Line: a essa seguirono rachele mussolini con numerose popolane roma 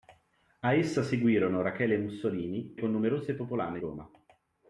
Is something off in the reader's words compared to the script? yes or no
no